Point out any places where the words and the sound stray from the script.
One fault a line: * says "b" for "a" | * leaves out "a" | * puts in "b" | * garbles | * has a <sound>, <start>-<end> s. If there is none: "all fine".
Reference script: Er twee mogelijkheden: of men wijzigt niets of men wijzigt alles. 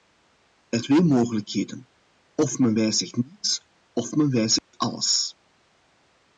* has a dropout, 4.6-4.7 s